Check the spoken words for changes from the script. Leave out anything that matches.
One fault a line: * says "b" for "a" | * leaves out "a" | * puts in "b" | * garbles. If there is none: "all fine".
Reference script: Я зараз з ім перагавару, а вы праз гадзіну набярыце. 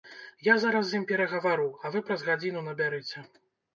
all fine